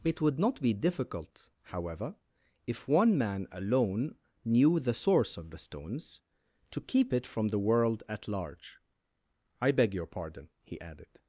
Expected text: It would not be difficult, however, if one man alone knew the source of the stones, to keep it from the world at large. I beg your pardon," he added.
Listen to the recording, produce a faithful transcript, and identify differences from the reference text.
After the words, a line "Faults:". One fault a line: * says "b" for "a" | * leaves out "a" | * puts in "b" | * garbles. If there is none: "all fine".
It would not be difficult, however, if one man alone knew the source of the stones, to keep it from the world at large. I beg your pardon," he added.
Faults:
all fine